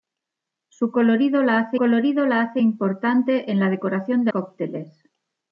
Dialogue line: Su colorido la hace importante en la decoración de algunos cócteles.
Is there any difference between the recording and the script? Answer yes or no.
yes